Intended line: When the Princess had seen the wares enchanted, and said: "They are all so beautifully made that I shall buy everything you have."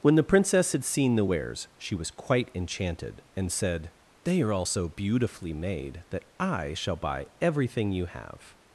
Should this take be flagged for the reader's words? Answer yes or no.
yes